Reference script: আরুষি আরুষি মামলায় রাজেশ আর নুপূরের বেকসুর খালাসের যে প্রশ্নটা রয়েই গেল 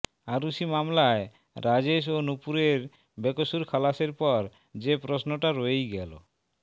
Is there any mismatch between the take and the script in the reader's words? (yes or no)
yes